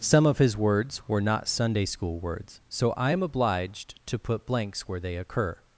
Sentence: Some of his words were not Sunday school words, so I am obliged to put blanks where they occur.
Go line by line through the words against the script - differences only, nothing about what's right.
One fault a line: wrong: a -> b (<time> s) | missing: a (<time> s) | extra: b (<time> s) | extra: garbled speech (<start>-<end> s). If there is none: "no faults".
no faults